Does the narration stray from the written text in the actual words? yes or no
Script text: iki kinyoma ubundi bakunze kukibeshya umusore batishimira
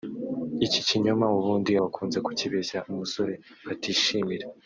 no